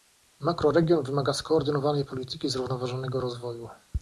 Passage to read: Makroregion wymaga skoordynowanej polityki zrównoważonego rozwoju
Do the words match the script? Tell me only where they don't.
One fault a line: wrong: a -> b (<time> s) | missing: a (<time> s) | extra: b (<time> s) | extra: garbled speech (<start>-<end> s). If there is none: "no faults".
no faults